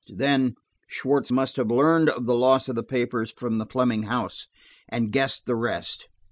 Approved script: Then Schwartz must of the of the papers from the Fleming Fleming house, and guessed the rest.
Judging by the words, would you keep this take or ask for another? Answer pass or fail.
fail